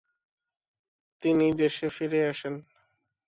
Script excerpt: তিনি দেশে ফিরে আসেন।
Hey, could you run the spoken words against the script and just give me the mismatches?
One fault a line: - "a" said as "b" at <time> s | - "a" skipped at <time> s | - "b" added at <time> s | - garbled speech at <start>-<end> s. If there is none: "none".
none